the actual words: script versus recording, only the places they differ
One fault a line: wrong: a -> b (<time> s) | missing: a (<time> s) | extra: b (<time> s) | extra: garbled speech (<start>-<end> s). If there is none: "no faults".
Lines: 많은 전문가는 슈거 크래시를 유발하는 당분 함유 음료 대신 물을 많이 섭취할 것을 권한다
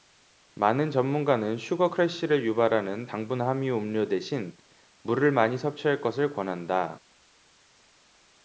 no faults